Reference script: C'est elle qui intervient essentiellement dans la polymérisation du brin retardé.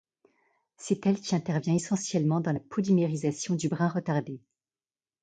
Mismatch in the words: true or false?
false